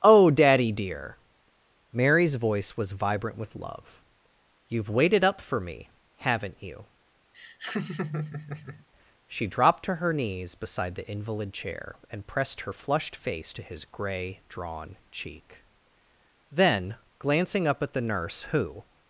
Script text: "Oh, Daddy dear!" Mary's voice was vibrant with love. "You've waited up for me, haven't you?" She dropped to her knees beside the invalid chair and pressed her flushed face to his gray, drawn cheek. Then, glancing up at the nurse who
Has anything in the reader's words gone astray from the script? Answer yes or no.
no